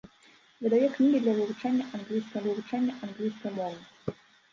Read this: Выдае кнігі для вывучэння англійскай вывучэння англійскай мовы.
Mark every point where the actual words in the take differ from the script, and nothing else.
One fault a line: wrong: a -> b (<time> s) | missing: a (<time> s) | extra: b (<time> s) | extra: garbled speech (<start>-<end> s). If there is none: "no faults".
no faults